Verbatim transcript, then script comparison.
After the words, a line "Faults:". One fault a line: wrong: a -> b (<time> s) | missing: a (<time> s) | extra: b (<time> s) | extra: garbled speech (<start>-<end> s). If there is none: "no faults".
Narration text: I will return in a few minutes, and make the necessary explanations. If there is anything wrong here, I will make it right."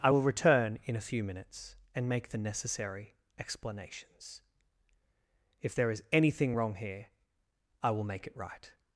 I will return in a few minutes, and make the necessary explanations. If there is anything wrong here, I will make it right."
Faults:
no faults